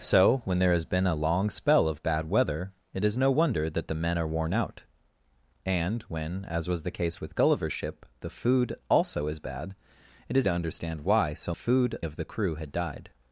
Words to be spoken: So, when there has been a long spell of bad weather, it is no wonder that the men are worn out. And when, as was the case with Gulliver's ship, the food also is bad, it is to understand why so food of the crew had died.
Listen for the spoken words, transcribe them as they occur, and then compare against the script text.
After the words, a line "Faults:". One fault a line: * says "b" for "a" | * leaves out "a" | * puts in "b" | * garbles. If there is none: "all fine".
So, when there has been a long spell of bad weather, it is no wonder that the men are worn out. And when, as was the case with Gulliver's ship, the food also is bad, it is to understand why so food of the crew had died.
Faults:
all fine